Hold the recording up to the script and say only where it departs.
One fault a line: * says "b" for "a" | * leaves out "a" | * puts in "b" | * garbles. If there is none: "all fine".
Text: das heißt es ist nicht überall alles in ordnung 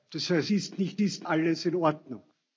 * leaves out "es"
* says "ist" for "überall"